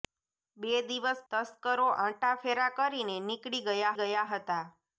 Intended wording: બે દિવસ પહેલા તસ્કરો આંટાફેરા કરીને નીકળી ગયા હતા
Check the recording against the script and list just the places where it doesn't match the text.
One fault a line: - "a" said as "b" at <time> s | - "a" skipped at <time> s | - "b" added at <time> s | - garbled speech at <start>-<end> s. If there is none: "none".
- "પહેલા" skipped at 1.2 s
- "ગયા" added at 4.0 s